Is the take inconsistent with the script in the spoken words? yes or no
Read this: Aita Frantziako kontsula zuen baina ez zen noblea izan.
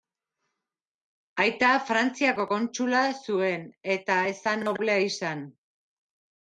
yes